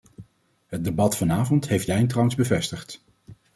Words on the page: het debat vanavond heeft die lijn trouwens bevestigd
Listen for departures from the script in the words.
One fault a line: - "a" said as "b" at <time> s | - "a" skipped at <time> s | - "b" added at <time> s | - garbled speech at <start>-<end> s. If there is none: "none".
- "die" skipped at 1.9 s